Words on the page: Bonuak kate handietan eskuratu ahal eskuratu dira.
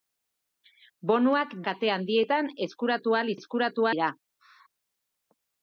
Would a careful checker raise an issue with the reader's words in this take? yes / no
no